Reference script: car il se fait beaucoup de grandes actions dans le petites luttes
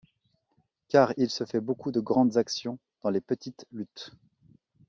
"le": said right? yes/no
no